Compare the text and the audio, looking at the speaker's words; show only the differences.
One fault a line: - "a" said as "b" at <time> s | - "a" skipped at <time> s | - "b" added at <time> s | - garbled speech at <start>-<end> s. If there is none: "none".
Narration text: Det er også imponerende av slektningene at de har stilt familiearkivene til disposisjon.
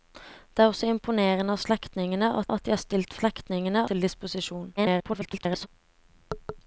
- "at" added at 2.5 s
- "familiearkivene" said as "slektningene" at 3.2 s
- garbled speech at 4.8-5.7 s